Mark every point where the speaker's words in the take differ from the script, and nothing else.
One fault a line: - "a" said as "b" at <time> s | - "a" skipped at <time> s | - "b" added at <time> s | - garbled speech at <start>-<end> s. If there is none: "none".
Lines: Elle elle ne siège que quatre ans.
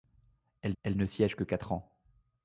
none